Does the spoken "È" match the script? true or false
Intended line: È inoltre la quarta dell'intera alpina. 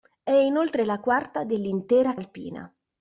true